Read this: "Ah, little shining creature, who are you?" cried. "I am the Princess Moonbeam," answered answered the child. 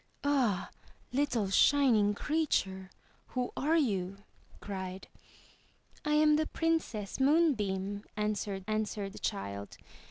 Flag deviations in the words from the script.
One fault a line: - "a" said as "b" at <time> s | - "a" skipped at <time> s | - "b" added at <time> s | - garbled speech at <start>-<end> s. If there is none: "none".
none